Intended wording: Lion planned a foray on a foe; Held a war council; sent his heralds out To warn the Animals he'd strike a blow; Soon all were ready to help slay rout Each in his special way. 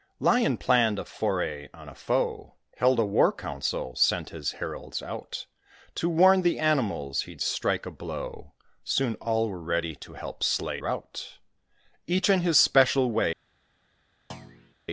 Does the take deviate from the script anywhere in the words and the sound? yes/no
yes